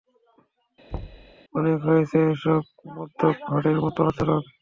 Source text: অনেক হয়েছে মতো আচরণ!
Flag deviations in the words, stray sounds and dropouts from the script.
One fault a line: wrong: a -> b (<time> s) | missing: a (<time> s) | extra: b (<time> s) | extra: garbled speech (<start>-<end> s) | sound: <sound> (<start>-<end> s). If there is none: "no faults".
sound: thud (0.9-1.4 s)
extra: এসব মদ্যপ ভাঁড়ের (2.3 s)